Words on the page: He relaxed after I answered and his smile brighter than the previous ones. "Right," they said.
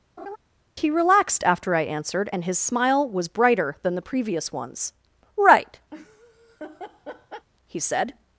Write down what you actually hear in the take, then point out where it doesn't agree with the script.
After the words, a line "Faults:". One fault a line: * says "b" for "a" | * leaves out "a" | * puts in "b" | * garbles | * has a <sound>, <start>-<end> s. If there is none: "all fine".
He relaxed after I answered and his smile was brighter than the previous ones. "Right," he said.
Faults:
* has a laugh, 0.2-0.4 s
* puts in "was"
* has a laugh, 5.9-7.5 s
* says "he" for "they"